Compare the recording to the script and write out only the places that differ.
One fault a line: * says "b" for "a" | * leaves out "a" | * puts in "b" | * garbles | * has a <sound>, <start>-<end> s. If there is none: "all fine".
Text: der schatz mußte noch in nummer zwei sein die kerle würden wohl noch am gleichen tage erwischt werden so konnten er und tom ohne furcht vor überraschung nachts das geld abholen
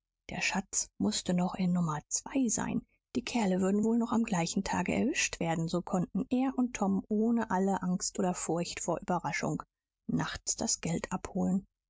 * puts in "alle angst oder"